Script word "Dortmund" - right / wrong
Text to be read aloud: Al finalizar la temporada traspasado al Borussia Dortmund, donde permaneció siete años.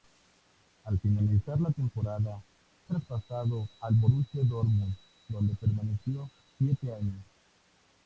right